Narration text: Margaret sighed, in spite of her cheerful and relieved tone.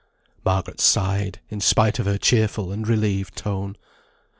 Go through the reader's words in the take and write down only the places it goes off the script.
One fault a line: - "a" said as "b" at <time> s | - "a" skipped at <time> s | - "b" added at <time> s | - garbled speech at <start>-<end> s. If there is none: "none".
none